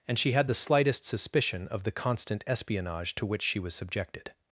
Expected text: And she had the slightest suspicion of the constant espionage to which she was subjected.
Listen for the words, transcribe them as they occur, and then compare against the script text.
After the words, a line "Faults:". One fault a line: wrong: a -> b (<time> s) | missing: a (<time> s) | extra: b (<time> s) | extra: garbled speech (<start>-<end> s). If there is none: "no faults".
And she had the slightest suspicion of the constant espionage to which she was subjected.
Faults:
no faults